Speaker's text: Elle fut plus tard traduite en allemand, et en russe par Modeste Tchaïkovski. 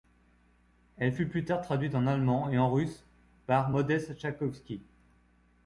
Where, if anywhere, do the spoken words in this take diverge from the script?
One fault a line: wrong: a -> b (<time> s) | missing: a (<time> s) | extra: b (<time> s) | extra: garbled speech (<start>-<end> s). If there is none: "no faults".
no faults